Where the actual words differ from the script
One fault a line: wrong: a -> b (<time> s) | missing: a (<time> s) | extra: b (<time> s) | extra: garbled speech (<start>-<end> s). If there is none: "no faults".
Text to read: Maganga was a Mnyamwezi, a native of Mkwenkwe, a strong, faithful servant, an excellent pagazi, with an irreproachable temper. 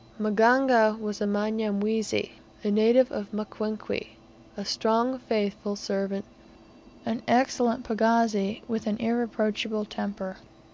no faults